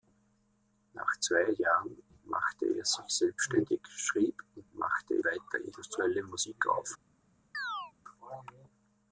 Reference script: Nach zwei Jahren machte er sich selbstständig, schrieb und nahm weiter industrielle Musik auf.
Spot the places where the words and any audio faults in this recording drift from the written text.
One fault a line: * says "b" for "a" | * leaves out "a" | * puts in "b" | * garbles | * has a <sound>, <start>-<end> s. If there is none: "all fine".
* says "machte" for "nahm"
* has a chirp, 7.5-7.9 s